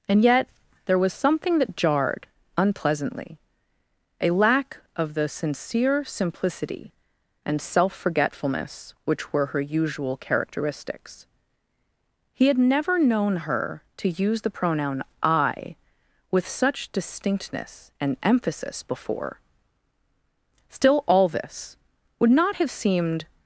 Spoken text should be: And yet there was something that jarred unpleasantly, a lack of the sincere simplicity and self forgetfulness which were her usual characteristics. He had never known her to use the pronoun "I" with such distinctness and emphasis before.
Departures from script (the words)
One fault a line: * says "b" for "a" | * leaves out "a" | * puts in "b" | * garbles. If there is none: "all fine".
* puts in "Still all this would not have seemed"